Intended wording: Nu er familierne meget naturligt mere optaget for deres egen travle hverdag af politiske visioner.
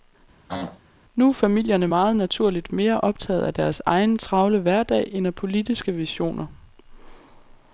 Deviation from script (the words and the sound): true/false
true